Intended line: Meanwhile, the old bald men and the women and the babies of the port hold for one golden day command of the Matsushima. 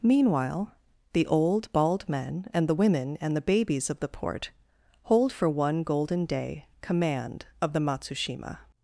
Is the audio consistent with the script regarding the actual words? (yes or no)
yes